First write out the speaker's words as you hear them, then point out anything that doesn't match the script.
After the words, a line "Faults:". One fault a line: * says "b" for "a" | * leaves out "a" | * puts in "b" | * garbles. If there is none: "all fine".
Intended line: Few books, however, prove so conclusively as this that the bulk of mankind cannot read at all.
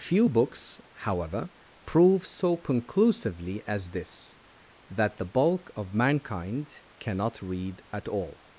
Few books, however, prove so conclusively as this that the bulk of mankind cannot read at all.
Faults:
all fine